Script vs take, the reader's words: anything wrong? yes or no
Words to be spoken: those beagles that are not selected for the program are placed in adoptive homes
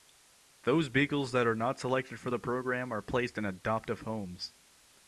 no